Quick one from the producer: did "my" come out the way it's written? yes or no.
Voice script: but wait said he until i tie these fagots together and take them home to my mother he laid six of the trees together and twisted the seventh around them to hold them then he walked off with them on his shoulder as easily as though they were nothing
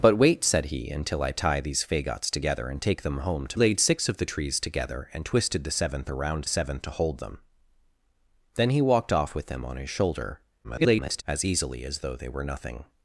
no